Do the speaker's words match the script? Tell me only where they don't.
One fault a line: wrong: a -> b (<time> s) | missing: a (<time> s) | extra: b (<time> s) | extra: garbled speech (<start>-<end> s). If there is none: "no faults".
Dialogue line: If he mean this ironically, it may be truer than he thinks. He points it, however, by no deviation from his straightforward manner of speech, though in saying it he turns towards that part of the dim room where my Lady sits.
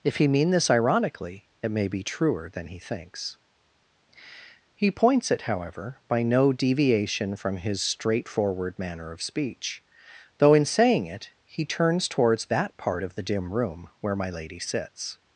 no faults